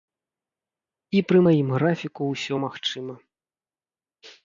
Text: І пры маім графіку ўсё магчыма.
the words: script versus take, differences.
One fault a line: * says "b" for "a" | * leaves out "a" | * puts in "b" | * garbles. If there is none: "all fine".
all fine